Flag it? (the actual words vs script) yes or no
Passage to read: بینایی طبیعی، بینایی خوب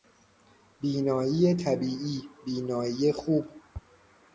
no